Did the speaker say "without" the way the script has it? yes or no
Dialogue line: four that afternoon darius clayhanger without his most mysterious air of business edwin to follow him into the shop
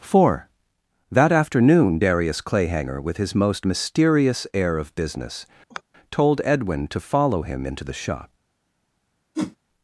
no